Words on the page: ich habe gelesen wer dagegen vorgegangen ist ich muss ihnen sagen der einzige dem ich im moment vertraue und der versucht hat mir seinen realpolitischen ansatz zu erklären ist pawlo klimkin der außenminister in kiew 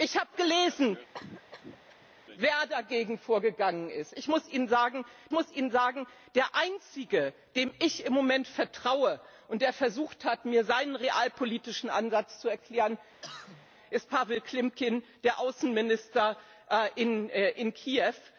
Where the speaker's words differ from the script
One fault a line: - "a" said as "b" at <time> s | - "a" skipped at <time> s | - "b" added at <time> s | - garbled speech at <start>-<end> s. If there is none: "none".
- "muss ihnen sagen" added at 5.3 s